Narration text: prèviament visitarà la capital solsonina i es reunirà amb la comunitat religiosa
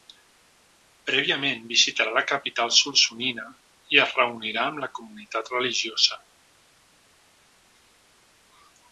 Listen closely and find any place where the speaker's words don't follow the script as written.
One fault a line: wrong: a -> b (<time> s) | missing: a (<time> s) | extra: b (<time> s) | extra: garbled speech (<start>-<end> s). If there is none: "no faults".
no faults